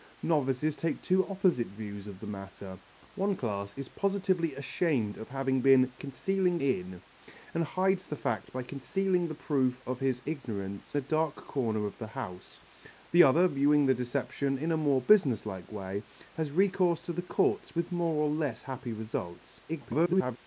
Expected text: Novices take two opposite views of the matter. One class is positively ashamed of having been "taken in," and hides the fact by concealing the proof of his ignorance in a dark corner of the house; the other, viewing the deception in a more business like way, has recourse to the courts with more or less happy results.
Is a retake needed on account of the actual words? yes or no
yes